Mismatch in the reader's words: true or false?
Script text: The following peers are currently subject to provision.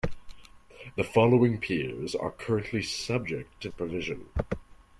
false